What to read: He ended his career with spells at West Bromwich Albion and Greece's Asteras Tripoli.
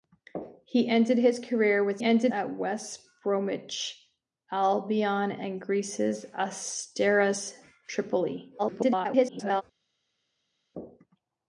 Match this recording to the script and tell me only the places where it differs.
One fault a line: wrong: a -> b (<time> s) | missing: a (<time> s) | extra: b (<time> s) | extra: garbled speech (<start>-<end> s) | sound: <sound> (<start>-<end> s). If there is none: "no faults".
wrong: spells -> ended (2.0 s)
extra: garbled speech (8.6-9.6 s)